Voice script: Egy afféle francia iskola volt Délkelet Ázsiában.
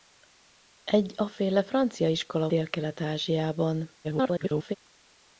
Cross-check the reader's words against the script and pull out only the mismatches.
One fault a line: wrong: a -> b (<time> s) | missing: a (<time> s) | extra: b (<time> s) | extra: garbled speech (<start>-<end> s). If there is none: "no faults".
missing: volt (2.5 s)
extra: garbled speech (4.0-4.8 s)